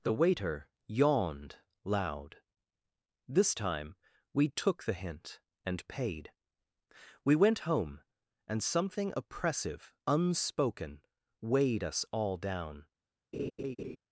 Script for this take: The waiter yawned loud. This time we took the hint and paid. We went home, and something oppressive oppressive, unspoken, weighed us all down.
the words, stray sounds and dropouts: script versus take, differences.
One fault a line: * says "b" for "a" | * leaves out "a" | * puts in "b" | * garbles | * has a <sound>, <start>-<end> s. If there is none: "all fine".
* leaves out "oppressive"
* has a laugh, 13.3-14.0 s